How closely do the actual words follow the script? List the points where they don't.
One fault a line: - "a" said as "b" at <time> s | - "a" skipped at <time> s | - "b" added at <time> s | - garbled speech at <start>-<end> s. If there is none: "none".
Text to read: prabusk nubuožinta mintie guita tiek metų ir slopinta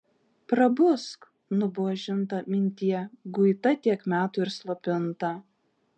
none